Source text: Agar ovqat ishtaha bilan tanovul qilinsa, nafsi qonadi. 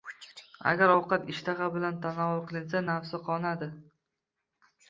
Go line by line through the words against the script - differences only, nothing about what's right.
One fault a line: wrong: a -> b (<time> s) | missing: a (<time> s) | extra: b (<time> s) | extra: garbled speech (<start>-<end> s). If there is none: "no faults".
no faults